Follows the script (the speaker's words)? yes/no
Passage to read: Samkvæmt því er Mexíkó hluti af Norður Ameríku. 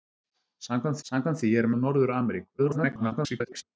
no